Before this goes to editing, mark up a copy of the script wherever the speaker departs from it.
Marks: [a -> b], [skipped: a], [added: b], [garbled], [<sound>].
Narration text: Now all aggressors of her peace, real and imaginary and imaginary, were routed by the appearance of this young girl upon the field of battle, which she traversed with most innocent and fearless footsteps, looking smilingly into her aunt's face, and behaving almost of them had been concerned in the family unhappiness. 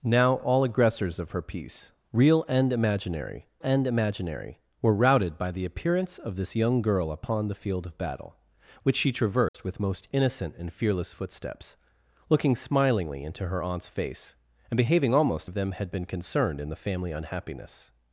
Now all aggressors of her peace, real and imaginary and imaginary, were routed by the appearance of this young girl upon the field of battle, which she traversed [dropout] with most innocent and fearless footsteps, looking smilingly into her aunt's face, and behaving almost of them had been concerned in the family unhappiness.